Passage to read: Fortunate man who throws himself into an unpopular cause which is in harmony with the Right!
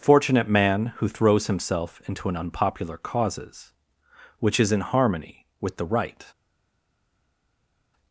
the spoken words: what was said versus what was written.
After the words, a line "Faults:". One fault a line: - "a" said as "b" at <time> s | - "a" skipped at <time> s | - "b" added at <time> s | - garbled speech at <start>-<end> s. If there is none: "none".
Fortunate man who throws himself into an unpopular causes which is in harmony with the Right!
Faults:
- "cause" said as "causes" at 3.0 s